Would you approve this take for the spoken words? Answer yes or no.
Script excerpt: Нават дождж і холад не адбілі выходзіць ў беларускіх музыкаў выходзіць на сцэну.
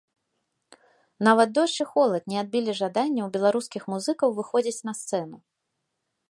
no